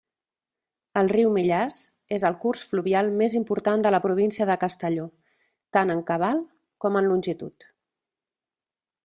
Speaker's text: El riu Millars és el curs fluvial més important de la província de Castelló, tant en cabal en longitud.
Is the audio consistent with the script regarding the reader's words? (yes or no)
no